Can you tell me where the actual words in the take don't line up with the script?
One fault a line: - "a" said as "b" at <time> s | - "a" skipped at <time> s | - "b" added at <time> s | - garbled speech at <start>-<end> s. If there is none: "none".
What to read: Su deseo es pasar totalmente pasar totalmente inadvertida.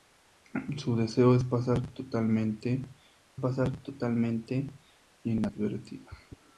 none